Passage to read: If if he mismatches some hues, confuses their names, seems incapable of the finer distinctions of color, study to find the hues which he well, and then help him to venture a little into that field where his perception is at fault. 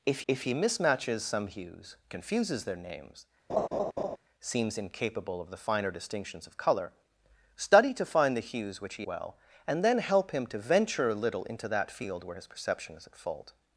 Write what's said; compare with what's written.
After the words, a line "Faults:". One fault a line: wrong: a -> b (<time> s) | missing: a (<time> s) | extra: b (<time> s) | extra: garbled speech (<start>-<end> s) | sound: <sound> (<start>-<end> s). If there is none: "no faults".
If if he mismatches some hues, confuses their names, seems incapable of the finer distinctions of color, study to find the hues which he well, and then help him to venture a little into that field where his perception is at fault.
Faults:
sound: laugh (3.5-4.2 s)